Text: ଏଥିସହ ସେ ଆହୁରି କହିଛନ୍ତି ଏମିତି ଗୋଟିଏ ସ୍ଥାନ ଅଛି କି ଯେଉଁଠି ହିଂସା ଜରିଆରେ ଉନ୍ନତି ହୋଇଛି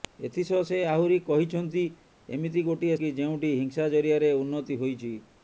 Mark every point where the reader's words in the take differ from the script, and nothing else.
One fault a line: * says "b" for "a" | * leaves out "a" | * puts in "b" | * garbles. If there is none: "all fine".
* leaves out "ସ୍ଥାନ ଅଛି"